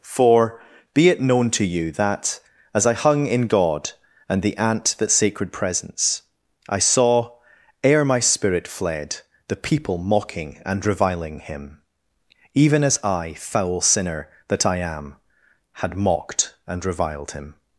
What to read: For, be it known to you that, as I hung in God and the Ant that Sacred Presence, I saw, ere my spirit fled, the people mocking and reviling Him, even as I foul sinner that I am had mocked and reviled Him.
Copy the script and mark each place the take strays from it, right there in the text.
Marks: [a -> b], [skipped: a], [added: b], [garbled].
For, be it known to you that, as I hung in God and the Ant that Sacred Presence, I saw, ere my spirit fled, the people mocking and reviling Him, even as I foul sinner that I am had mocked and reviled Him.